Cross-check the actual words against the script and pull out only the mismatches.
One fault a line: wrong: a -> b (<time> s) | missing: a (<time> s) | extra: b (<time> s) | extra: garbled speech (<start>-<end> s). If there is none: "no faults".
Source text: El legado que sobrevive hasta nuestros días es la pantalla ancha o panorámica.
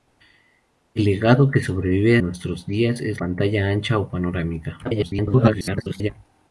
missing: hasta (2.2 s)
missing: la (3.2 s)
extra: garbled speech (4.8-6.1 s)